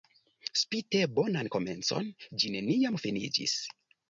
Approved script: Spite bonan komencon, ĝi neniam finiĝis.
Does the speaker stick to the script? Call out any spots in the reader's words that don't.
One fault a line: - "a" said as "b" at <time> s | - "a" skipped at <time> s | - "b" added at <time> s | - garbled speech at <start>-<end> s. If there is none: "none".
none